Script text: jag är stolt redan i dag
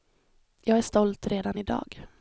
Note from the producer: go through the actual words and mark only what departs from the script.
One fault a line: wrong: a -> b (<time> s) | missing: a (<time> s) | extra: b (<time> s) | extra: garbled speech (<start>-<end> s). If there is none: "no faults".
no faults